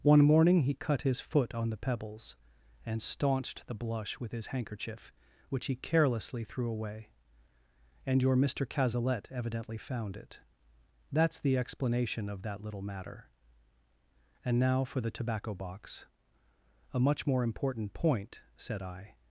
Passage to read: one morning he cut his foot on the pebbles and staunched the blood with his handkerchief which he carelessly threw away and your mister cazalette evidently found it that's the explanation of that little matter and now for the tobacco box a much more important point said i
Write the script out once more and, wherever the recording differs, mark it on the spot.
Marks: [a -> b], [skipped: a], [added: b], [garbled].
one morning he cut his foot on the pebbles and staunched the [blood -> blush] with his handkerchief which he carelessly threw away and your mister cazalette evidently found it that's the explanation of that little matter and now for the tobacco box a much more important point said i